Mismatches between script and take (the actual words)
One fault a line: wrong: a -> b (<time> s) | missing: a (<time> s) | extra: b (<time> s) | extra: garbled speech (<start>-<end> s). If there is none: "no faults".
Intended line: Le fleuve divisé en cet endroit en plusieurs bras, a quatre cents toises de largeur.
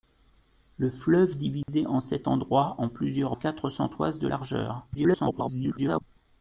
missing: bras a (3.4 s)
extra: garbled speech (4.9-6.0 s)